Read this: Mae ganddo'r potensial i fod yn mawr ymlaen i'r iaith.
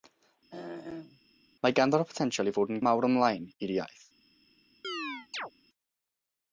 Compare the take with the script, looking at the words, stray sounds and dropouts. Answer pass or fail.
fail